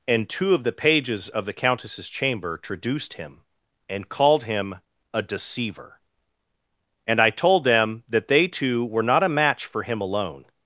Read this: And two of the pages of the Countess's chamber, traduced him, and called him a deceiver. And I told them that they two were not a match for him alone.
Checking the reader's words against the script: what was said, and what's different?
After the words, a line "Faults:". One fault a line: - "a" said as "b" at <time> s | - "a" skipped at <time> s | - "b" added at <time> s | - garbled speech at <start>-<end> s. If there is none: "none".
And two of the pages of the Countess's chamber, traduced him, and called him a deceiver. And I told them that they two were not a match for him alone.
Faults:
none